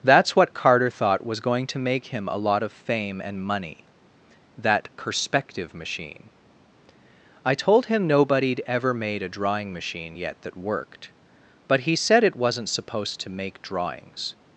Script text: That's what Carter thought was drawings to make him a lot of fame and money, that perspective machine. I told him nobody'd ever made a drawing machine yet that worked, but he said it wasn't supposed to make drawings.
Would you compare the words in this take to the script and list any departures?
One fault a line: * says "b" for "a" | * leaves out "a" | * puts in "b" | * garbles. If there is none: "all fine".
* says "going" for "drawings"